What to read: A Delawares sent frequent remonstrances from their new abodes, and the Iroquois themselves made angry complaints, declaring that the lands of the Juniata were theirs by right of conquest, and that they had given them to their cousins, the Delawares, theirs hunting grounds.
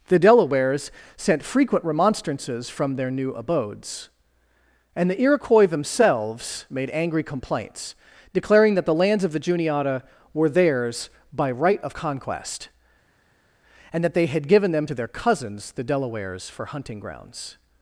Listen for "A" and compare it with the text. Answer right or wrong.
wrong